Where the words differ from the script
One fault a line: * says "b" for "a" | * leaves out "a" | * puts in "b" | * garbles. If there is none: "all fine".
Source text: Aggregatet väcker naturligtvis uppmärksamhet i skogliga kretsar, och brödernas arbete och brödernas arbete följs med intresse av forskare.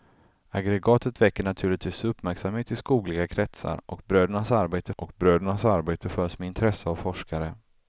all fine